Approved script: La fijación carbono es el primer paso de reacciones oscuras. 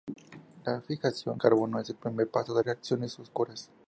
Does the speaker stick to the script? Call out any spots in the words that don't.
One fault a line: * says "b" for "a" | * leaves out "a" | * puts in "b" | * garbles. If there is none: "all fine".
all fine